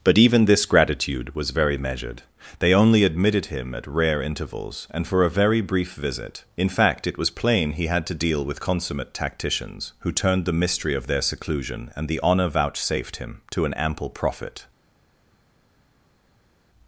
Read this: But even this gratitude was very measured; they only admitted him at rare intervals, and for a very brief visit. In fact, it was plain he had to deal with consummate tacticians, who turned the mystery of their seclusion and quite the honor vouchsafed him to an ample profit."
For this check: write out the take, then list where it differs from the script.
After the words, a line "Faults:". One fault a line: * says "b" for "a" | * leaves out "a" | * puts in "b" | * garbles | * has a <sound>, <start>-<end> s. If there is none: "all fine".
But even this gratitude was very measured; they only admitted him at rare intervals, and for a very brief visit. In fact, it was plain he had to deal with consummate tacticians, who turned the mystery of their seclusion and the honor vouchsafed him to an ample profit."
Faults:
* leaves out "quite"